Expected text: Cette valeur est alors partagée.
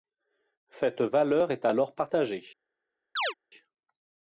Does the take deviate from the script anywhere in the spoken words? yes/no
no